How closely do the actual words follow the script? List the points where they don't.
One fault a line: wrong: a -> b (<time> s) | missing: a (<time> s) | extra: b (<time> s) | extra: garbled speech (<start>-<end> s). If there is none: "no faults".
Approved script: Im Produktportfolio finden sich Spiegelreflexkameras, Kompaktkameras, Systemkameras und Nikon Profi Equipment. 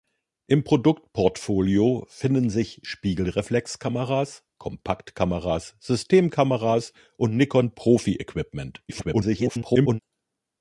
extra: garbled speech (8.9-10.0 s)